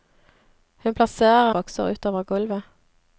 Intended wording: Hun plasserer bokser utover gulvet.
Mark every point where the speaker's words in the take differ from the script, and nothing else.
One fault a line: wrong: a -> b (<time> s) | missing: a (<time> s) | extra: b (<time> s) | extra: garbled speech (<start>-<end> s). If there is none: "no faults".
no faults